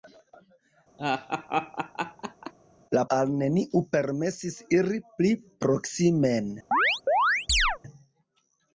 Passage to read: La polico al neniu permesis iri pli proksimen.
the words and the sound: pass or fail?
fail